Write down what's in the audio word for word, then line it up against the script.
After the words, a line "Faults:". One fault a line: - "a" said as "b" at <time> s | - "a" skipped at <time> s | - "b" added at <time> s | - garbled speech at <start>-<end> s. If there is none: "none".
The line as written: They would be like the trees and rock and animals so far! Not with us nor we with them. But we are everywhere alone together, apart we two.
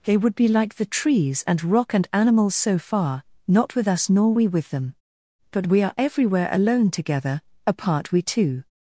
They would be like the trees and rock and animals so far! Not with us nor we with them. But we are everywhere alone together, apart we two.
Faults:
none